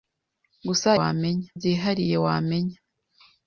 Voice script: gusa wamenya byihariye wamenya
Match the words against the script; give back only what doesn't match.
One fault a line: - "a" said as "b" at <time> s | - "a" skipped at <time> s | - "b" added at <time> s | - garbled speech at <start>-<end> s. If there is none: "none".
none